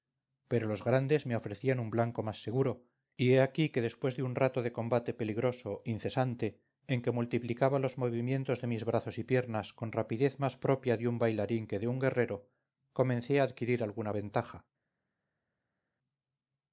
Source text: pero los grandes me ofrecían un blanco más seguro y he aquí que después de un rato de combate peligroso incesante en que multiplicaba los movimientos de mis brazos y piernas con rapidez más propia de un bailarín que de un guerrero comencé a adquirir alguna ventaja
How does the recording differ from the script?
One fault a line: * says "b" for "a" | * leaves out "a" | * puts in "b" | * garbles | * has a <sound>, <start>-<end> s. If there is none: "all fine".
all fine